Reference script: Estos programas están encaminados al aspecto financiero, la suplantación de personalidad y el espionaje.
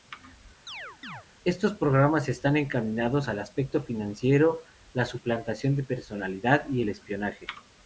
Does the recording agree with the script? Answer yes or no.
yes